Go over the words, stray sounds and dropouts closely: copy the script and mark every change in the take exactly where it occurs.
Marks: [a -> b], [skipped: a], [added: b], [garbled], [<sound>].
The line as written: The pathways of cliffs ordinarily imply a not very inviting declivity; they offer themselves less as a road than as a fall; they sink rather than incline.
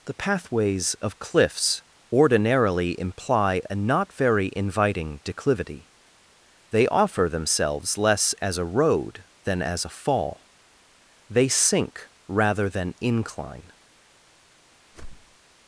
The pathways of cliffs ordinarily imply a not very inviting declivity; they offer themselves less as a road than as a fall; they sink rather than incline. [whoosh]